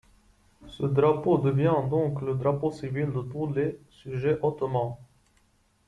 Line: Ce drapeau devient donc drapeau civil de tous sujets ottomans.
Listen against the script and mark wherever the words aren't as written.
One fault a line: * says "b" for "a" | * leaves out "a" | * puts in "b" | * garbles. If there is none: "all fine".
* puts in "le"
* puts in "les"